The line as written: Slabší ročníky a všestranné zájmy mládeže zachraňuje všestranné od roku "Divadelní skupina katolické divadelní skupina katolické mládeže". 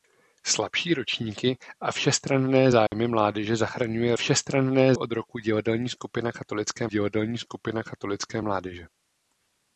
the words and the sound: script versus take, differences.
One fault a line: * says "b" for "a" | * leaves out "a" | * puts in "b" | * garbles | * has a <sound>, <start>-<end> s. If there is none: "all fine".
* has a dropout, 2.9-2.9 s